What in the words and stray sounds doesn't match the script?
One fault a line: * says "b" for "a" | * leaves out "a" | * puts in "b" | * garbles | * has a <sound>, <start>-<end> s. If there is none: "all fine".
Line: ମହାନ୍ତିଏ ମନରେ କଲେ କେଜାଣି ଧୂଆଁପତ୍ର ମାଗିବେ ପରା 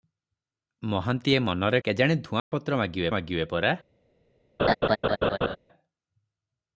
* leaves out "କଲେ"
* has a dropout, 2.4-2.5 s
* puts in "ମାଗିବେ"
* has a laugh, 4.6-5.6 s